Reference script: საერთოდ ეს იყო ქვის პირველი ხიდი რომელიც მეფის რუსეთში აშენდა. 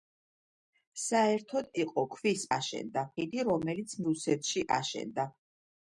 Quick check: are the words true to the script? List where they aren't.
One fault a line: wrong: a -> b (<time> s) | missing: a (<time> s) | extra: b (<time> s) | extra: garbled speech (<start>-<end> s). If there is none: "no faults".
missing: ეს (1.7 s)
wrong: პირველი -> აშენდა (2.6 s)
missing: მეფის (4.0 s)